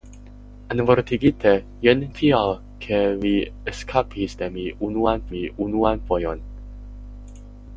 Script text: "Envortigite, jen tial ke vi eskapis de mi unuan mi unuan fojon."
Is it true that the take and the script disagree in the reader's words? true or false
false